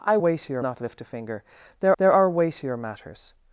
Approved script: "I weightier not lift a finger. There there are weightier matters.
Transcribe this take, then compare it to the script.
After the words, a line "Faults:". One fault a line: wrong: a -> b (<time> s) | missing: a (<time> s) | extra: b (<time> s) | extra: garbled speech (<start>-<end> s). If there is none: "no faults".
"I weightier not lift a finger. There there are weightier matters.
Faults:
no faults